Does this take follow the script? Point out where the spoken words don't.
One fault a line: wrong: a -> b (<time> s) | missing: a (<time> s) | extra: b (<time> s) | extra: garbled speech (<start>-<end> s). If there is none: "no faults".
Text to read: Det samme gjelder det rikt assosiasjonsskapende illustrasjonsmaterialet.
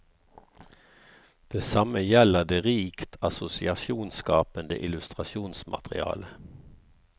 no faults